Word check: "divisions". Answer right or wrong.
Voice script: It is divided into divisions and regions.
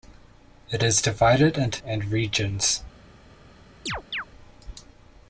wrong